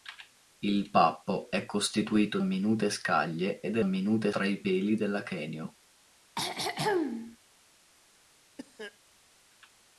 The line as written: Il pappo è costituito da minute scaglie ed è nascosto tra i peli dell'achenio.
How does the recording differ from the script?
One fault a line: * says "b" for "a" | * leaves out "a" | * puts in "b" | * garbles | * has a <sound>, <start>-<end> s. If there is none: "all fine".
* leaves out "da"
* says "minute" for "nascosto"
* has a throat clearing, 6.4-7.4 s
* has a cough, 8.6-9.0 s